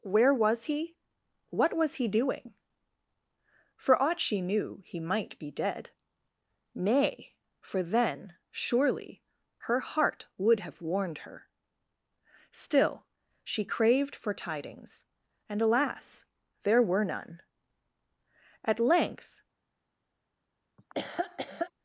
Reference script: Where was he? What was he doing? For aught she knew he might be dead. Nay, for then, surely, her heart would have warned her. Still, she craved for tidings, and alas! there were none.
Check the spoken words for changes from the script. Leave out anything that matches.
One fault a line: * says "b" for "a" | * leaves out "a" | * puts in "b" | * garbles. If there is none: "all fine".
* puts in "At length"